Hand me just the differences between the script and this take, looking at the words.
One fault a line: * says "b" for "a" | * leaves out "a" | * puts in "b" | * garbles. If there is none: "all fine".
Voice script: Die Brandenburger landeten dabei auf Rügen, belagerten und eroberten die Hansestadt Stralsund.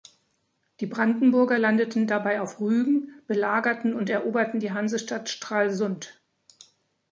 all fine